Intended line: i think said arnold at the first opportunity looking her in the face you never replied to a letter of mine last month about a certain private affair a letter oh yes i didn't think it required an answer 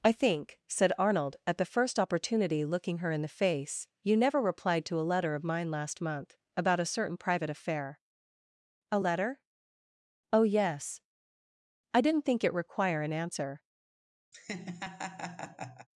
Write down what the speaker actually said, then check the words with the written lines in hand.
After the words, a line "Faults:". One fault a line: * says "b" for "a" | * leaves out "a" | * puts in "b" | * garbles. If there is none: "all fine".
i think said arnold at the first opportunity looking her in the face you never replied to a letter of mine last month about a certain private affair a letter oh yes i didn't think it require an answer
Faults:
* says "require" for "required"